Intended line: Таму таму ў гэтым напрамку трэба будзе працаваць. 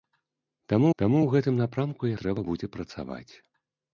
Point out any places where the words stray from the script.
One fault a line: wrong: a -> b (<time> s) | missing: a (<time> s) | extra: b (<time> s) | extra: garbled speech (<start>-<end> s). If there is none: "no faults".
no faults